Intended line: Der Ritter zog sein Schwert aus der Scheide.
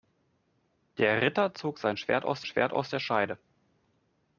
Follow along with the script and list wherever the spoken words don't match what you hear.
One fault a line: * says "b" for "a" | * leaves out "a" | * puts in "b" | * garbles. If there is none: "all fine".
* puts in "Schwert aus"